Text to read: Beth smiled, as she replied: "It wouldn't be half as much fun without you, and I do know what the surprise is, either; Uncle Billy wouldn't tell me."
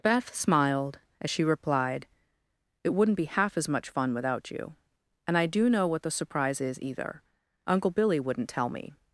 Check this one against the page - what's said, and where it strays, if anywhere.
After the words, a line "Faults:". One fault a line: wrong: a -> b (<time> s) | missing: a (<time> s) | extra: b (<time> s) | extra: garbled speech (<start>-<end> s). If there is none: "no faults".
Beth smiled, as she replied: "It wouldn't be half as much fun without you, and I do know what the surprise is, either; Uncle Billy wouldn't tell me."
Faults:
no faults